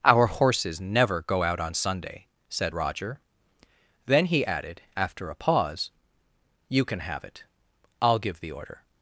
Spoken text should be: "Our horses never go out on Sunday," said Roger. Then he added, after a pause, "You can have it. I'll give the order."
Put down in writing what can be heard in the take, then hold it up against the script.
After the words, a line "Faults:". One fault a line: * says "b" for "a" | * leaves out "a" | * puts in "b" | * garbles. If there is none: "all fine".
"Our horses never go out on Sunday," said Roger. Then he added, after a pause, "You can have it. I'll give the order."
Faults:
all fine